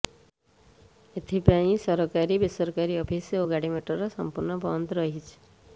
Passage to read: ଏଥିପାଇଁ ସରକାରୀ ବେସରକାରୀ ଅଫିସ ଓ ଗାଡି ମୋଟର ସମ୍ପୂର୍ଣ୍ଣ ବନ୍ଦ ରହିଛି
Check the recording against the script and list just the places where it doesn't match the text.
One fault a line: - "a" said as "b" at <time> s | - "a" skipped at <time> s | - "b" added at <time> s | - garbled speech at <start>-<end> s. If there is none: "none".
none